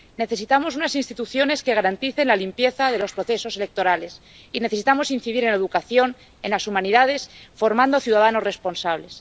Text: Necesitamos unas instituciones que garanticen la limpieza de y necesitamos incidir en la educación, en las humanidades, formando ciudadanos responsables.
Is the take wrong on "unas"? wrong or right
right